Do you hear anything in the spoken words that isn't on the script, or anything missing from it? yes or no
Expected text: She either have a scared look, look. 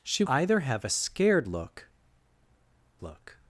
no